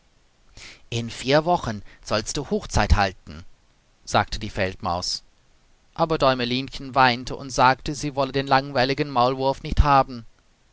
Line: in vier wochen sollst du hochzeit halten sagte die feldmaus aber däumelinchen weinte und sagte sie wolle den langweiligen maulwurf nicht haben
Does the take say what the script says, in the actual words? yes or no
yes